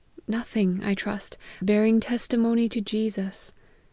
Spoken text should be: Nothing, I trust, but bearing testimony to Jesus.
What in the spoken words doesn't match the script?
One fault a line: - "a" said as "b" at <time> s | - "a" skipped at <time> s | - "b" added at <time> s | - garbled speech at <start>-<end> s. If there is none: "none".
- "but" skipped at 1.4 s